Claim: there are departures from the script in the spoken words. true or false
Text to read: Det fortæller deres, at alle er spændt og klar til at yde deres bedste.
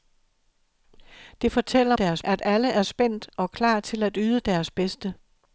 false